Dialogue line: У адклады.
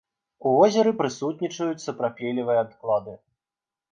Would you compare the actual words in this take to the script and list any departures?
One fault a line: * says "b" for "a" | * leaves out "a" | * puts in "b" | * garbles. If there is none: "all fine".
* puts in "возеры прысутнічаюць сапрапелевыя"